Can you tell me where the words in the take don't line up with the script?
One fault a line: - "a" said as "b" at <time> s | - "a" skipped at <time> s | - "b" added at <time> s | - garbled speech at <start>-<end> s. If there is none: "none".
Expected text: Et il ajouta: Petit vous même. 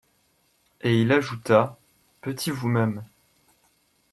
none